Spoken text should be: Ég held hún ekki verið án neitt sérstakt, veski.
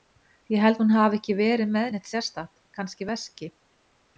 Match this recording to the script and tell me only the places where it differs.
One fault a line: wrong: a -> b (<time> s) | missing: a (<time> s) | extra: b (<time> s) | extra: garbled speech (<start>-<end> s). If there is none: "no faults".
extra: hafi (1.0 s)
wrong: án -> með (1.8 s)
extra: kannski (2.8 s)